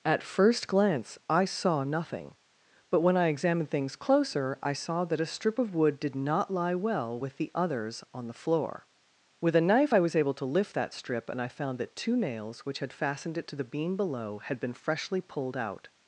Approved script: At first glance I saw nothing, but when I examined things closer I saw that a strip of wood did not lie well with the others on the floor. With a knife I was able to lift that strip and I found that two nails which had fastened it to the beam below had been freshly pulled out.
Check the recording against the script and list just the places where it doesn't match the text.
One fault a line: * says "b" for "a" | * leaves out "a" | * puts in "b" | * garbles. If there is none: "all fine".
all fine